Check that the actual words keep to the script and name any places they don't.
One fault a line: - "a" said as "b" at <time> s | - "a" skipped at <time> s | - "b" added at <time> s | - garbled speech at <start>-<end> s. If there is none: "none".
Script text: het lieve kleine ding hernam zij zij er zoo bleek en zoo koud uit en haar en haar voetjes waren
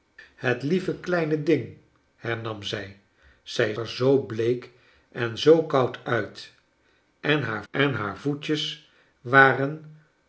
none